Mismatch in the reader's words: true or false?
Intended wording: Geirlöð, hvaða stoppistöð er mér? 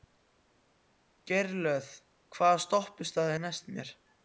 true